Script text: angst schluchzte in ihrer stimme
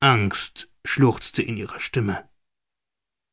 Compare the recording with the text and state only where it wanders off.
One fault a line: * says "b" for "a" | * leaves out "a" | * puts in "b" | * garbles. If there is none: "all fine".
all fine